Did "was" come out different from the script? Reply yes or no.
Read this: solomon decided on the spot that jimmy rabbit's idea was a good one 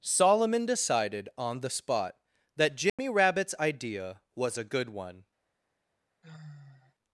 no